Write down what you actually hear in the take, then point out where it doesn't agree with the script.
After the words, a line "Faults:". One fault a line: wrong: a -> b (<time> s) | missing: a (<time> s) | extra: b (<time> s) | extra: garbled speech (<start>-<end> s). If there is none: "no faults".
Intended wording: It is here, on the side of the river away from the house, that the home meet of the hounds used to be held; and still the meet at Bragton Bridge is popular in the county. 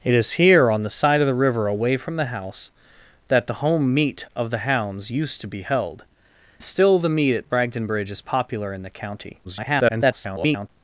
It is here, on the side of the river away from the house, that the home meet of the hounds used to be held; still the meet at Bragton Bridge is popular in the county. [garbled]
Faults:
missing: and (6.0 s)
extra: garbled speech (9.4-10.7 s)